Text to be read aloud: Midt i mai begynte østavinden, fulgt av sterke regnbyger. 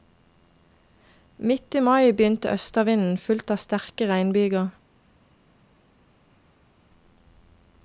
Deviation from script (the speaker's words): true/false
false